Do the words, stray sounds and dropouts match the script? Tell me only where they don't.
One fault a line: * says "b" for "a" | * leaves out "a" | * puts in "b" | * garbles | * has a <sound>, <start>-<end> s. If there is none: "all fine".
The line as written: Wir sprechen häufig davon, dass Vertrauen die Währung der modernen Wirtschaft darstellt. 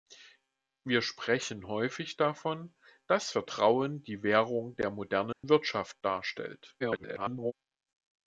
* has a dropout, 5.3-5.4 s
* garbles